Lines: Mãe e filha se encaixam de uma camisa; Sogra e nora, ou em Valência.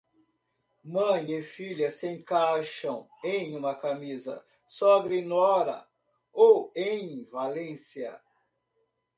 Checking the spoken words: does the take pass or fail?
fail